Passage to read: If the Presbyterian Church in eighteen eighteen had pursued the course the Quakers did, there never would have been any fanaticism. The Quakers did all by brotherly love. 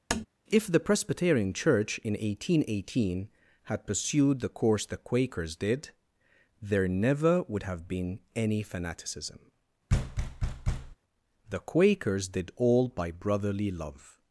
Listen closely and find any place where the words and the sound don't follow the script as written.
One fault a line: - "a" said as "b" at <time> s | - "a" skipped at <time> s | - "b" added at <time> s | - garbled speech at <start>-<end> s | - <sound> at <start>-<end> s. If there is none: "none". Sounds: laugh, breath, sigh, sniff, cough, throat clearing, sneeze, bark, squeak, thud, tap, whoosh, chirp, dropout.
- tap at 0.1-0.3 s
- thud at 9.9-11.0 s